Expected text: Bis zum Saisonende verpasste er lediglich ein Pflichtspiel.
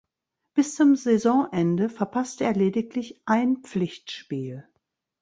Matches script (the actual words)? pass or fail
pass